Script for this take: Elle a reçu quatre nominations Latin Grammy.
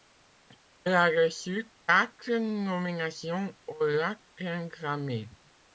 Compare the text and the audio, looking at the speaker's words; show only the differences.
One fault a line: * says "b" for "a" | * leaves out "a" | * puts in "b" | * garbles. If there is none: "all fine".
* puts in "aux"